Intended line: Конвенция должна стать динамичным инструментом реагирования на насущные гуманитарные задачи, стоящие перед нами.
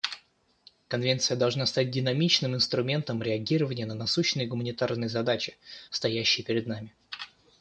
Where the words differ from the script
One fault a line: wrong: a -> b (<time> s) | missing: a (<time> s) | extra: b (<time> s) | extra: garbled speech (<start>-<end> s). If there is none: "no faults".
no faults